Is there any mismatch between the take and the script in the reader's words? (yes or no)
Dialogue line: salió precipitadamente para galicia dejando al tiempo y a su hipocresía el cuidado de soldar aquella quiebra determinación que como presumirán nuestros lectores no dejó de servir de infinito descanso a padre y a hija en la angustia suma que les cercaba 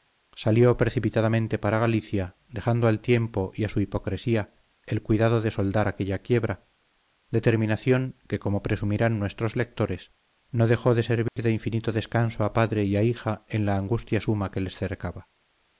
no